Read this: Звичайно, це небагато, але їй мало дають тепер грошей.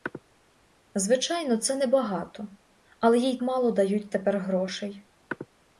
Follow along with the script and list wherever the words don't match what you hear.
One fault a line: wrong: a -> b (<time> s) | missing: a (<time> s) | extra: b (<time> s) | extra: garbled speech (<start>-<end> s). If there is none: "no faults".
no faults